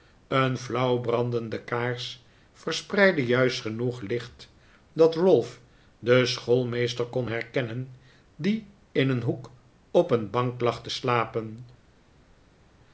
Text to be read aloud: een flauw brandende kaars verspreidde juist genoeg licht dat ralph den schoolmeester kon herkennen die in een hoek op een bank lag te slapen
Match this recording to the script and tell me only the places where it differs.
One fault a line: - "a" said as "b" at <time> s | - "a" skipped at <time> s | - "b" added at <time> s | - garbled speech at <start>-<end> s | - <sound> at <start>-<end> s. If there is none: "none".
none